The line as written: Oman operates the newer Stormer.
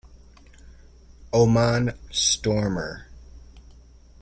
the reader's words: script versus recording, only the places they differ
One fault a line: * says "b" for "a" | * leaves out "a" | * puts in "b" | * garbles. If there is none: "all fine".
* leaves out "operates the newer"